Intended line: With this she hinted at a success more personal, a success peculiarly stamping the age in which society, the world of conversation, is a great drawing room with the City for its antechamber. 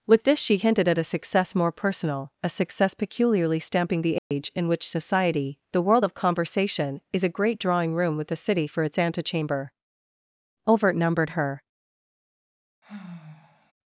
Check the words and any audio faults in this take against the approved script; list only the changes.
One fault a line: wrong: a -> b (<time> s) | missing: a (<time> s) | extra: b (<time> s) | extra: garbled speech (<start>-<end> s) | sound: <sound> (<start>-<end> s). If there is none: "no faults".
sound: dropout (4.2-4.3 s)
extra: Overt numbered her (10.7 s)
sound: sigh (12.8-13.7 s)